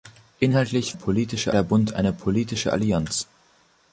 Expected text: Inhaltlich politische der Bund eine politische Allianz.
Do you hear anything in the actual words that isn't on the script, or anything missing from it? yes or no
no